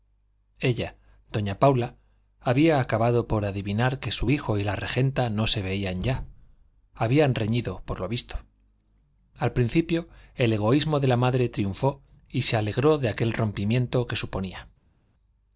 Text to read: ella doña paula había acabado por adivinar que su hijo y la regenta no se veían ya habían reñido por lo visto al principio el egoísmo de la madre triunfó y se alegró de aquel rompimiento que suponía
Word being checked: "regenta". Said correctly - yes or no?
yes